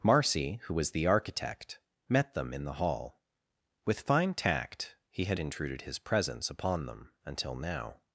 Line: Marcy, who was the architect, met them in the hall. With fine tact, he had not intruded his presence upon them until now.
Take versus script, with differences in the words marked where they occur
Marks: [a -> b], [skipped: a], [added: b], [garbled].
Marcy, who was the architect, met them in the hall. With fine tact, he had [skipped: not] intruded his presence upon them until now.